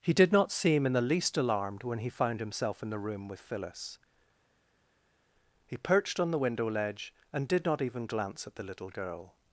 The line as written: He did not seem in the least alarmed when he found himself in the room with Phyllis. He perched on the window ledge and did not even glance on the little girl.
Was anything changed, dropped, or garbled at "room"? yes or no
no